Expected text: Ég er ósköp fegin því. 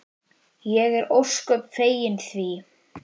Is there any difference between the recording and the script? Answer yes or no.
no